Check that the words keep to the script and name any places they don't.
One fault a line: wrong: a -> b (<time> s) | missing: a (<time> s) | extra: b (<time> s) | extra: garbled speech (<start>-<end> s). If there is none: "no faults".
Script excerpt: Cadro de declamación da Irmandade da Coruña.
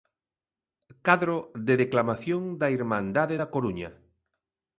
no faults